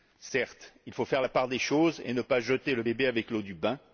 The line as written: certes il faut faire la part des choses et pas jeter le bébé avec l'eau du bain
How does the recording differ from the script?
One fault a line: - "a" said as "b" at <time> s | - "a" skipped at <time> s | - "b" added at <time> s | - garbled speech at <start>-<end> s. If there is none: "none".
- "ne" added at 2.1 s